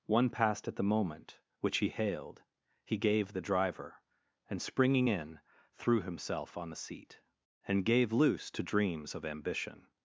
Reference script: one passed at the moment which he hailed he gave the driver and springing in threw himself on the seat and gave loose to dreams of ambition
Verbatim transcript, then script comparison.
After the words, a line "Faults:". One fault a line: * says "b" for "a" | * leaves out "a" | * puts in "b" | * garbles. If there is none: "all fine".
one passed at the moment which he hailed he gave the driver and springing in threw himself on the seat and gave loose to dreams of ambition
Faults:
all fine